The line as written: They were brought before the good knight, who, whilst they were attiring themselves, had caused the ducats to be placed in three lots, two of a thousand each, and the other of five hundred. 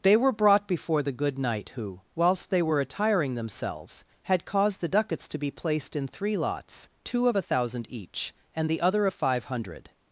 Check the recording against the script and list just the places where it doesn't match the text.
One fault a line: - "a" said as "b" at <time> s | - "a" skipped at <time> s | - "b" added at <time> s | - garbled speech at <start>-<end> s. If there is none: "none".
none